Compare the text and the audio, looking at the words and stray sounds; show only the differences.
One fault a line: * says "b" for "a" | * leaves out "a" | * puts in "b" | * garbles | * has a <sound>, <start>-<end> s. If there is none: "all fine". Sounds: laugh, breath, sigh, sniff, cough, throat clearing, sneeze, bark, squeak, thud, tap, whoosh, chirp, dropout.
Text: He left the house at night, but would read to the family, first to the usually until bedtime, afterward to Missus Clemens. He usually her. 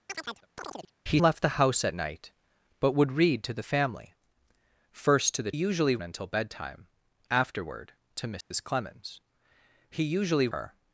* has a chirp, 0.1-0.9 s
* has a dropout, 8.4-8.5 s